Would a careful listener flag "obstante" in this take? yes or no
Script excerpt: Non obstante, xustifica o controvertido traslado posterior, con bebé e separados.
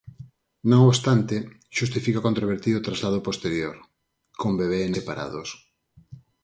no